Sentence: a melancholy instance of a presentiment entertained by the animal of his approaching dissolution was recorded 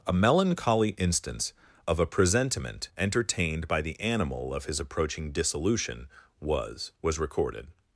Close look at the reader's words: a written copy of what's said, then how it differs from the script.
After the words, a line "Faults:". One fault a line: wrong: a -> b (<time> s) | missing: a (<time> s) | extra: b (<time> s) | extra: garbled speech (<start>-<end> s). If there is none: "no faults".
a melancholy instance of a presentiment entertained by the animal of his approaching dissolution was was recorded
Faults:
extra: was (7.0 s)